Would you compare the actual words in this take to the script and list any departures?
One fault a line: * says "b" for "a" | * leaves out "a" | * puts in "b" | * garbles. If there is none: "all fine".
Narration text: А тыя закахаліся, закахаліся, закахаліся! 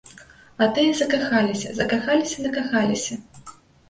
all fine